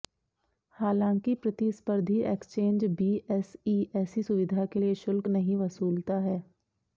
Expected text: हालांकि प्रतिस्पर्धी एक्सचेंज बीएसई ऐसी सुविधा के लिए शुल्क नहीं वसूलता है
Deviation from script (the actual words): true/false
false